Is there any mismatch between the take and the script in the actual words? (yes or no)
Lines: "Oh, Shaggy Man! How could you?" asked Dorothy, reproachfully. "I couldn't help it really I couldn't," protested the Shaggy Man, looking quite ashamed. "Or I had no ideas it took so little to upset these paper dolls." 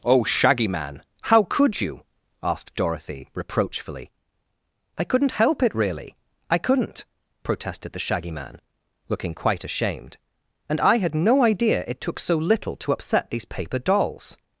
yes